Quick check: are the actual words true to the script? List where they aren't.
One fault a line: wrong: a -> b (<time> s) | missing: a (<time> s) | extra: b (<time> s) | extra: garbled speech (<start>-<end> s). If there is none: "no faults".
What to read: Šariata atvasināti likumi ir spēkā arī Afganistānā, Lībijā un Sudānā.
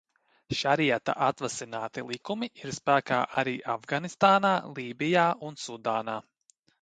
no faults